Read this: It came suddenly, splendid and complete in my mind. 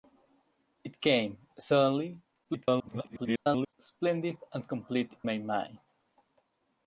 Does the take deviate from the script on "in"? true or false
true